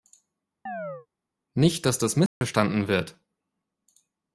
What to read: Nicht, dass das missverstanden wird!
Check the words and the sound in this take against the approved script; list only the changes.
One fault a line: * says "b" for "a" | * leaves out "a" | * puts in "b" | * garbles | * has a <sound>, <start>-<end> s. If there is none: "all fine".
* has a chirp, 0.7-1.1 s
* has a dropout, 2.3-2.4 s